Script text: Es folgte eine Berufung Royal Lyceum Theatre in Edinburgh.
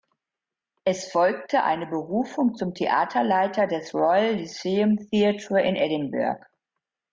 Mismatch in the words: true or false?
true